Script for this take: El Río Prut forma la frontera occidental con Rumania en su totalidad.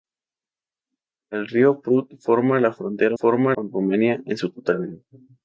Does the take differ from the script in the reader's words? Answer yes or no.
yes